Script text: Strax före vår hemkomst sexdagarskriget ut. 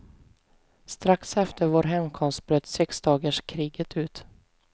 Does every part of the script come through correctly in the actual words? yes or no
no